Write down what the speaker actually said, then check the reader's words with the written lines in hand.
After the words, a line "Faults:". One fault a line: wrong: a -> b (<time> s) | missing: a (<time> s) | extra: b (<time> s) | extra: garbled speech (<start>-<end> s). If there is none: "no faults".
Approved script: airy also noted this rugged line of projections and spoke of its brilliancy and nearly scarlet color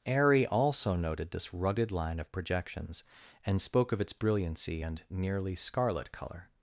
airy also noted this rugged line of projections and spoke of its brilliancy and nearly scarlet color
Faults:
no faults